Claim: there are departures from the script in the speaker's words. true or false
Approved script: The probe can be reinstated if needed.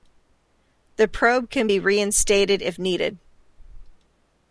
false